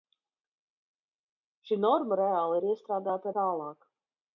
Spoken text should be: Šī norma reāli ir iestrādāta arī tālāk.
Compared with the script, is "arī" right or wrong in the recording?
wrong